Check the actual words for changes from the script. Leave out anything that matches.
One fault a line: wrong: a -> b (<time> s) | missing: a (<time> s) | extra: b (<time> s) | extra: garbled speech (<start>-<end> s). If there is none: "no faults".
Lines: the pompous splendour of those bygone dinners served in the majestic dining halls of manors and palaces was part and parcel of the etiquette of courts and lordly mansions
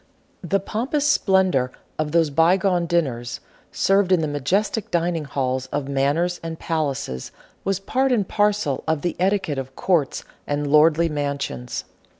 no faults